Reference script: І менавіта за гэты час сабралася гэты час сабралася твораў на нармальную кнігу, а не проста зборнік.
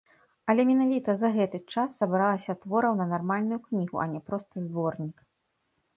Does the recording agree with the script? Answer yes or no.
no